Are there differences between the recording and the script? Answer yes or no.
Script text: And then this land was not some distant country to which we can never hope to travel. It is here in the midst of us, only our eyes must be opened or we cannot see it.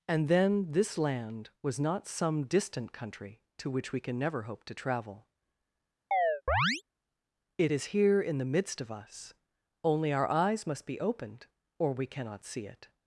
no